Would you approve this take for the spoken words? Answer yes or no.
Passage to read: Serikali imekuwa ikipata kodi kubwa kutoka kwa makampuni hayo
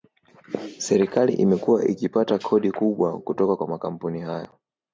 yes